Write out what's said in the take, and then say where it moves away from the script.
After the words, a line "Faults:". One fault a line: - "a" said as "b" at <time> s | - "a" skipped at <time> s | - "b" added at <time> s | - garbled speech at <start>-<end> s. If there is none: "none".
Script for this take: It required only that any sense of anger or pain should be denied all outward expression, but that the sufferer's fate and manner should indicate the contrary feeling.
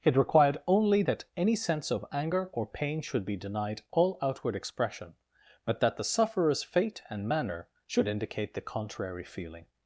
It required only that any sense of anger or pain should be denied all outward expression, but that the sufferer's fate and manner should indicate the contrary feeling.
Faults:
none